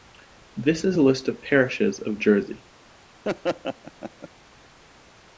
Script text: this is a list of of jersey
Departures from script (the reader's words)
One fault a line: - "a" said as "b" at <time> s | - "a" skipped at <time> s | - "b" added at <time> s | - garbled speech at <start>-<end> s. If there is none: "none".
- "parishes" added at 1.4 s